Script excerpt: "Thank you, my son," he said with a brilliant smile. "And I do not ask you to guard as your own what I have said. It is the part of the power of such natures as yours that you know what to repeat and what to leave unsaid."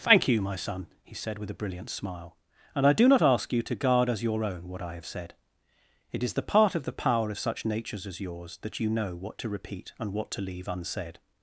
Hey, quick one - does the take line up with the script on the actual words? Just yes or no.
yes